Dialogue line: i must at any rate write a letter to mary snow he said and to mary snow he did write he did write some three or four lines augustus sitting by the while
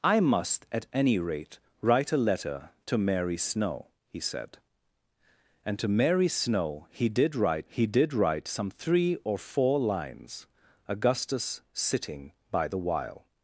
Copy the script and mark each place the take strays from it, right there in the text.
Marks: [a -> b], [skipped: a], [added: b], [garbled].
i must at any rate write a letter to mary snow he said and to mary snow he did write he did write some three or four lines augustus sitting by the while